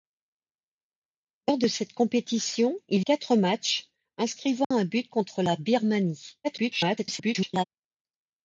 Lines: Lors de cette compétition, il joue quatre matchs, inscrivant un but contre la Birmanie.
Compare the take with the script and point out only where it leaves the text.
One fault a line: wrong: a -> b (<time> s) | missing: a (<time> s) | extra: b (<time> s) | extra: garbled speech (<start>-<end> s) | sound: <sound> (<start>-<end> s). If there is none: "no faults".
missing: joue (3.0 s)
sound: dropout (4.6-4.7 s)
extra: garbled speech (6.4-7.6 s)